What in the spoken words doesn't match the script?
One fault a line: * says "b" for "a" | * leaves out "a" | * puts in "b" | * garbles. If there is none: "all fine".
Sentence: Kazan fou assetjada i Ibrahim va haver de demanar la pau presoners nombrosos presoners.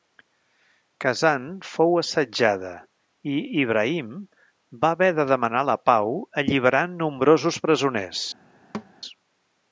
* says "alliberant" for "presoners"